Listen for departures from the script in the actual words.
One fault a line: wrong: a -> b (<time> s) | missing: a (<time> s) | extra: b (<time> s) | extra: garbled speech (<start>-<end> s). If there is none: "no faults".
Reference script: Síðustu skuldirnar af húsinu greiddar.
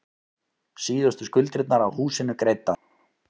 no faults